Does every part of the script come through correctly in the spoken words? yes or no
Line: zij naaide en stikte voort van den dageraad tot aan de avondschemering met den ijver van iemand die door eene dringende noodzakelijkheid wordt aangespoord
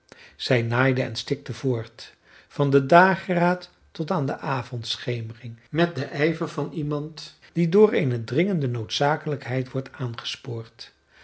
yes